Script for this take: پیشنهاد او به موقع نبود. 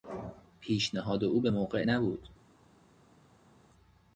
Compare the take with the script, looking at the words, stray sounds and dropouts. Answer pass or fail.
pass